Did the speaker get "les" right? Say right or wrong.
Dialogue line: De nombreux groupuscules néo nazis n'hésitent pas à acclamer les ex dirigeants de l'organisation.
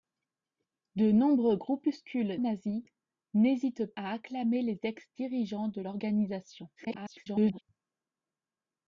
right